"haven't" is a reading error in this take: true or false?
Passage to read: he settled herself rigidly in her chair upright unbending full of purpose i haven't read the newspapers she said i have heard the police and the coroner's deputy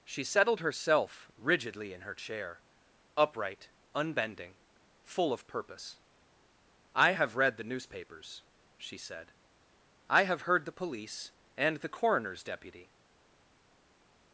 true